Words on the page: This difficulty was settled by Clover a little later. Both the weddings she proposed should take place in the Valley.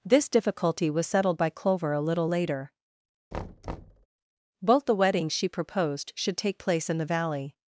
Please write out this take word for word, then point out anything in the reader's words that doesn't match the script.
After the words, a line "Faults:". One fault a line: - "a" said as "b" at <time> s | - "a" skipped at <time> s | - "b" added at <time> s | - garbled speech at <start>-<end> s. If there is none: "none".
This difficulty was settled by Clover a little later. Both the weddings she proposed should take place in the Valley.
Faults:
none